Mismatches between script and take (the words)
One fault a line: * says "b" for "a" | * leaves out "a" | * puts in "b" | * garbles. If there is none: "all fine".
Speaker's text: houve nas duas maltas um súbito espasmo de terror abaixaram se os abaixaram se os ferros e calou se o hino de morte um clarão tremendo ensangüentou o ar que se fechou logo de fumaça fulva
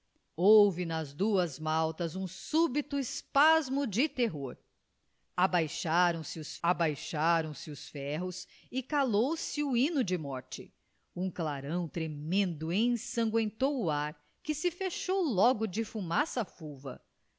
all fine